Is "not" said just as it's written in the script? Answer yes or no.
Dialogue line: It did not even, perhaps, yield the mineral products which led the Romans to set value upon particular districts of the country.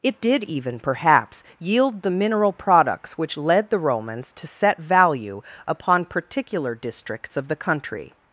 no